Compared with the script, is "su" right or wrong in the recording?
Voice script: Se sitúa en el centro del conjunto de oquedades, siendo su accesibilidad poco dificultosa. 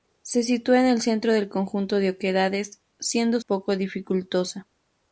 wrong